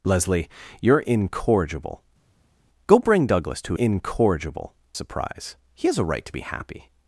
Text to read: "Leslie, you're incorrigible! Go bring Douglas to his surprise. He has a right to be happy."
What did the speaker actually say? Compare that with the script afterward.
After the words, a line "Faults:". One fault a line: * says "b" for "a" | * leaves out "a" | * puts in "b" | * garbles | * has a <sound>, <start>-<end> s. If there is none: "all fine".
"Leslie, you're incorrigible! Go bring Douglas to incorrigible surprise. He has a right to be happy."
Faults:
* says "incorrigible" for "his"